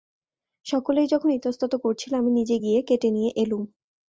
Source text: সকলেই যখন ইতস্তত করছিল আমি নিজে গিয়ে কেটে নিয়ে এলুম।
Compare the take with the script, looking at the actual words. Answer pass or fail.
pass